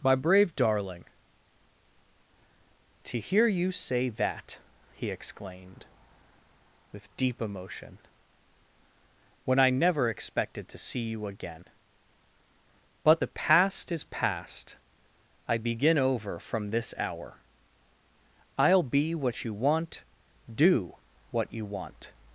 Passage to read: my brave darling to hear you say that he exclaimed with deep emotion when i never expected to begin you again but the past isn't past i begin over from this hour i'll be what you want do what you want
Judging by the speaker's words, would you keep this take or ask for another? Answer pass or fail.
fail